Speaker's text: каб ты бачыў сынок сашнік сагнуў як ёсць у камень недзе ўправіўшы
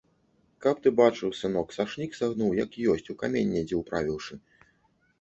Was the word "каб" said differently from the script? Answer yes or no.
no